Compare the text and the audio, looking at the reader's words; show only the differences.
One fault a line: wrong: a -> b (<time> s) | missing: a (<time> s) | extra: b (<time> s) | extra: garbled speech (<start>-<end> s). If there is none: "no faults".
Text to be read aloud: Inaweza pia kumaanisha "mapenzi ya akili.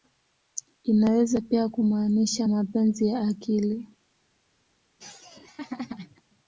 no faults